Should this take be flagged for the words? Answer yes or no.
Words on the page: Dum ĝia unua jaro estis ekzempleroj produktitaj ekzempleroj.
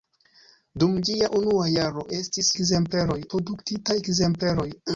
no